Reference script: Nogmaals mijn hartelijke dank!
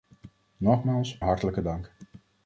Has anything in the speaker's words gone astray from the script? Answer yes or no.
yes